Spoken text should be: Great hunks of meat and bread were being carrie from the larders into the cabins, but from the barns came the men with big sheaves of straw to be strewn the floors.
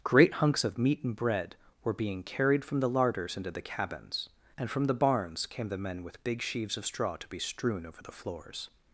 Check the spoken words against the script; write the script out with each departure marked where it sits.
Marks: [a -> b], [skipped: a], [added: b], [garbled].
Great hunks of meat and bread were being [carrie -> carried] from the larders into the cabins, [but -> and] from the barns came the men with big sheaves of straw to be strewn [added: over] the floors.